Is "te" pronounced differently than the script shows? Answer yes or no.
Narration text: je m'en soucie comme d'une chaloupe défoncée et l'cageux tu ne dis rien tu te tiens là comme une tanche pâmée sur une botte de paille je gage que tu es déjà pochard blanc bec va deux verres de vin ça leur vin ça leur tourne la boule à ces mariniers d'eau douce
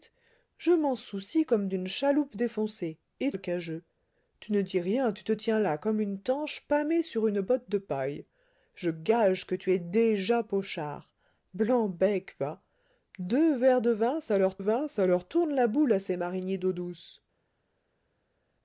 no